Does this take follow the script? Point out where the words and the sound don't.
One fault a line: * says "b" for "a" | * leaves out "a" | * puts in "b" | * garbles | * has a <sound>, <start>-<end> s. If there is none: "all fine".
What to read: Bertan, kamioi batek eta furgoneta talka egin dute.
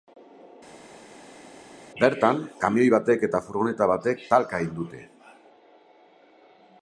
* puts in "batek"